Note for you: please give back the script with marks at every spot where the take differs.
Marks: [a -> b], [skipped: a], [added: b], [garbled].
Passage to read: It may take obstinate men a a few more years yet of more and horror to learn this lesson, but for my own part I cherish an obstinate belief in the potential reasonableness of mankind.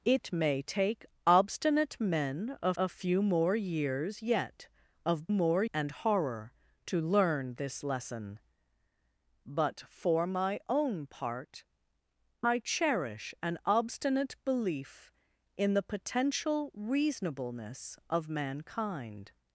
It may take obstinate men a a few more years yet of more and horror to learn this lesson, but for my own part I cherish an obstinate belief in the potential reasonableness of mankind.